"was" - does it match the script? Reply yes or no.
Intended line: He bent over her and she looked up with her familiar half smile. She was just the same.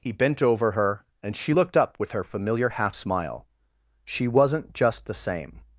no